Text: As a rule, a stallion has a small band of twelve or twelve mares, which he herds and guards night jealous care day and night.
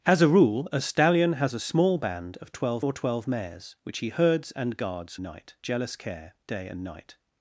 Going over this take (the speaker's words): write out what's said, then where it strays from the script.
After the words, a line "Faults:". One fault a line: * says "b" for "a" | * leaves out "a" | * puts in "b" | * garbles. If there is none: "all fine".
As a rule, a stallion has a small band of twelve or twelve mares, which he herds and guards night jealous care day and night.
Faults:
all fine